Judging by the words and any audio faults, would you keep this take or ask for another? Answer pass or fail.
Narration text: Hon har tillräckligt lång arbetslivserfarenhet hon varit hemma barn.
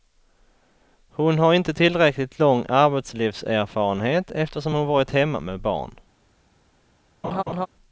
fail